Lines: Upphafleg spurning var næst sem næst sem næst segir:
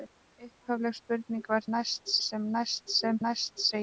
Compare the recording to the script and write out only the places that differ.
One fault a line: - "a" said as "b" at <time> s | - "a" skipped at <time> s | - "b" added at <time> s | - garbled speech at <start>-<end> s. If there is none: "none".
none